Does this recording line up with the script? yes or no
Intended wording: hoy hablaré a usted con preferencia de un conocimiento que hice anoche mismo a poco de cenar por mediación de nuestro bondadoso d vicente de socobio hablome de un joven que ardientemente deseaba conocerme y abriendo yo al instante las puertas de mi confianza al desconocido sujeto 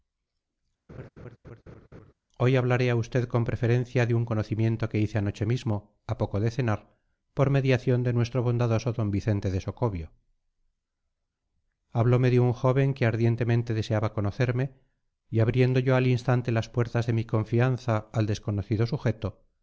yes